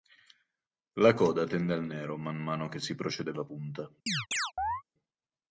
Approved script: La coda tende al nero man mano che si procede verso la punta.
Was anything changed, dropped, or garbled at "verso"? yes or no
yes